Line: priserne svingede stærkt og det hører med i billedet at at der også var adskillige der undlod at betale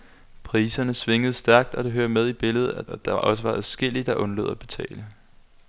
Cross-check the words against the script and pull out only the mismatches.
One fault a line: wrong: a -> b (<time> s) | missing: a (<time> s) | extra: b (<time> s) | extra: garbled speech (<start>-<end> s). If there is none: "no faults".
no faults